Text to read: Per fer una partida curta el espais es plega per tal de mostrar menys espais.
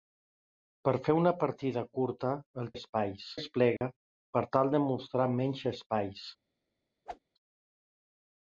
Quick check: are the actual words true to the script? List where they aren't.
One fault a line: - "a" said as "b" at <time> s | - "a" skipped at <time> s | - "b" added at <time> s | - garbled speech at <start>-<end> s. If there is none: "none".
none